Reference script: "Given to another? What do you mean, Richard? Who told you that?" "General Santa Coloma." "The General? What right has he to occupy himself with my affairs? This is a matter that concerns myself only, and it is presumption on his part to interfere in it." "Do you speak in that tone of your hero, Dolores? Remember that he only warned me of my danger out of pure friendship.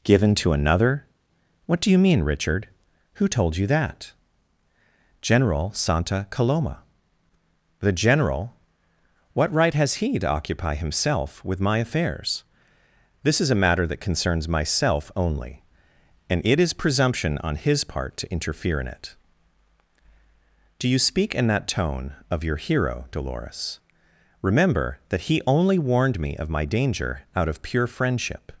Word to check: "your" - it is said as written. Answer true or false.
true